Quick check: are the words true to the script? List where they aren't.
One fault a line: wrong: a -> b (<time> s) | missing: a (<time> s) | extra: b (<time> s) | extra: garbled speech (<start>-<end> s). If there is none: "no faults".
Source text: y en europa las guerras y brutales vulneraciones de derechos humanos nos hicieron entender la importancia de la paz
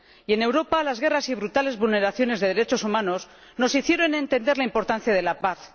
no faults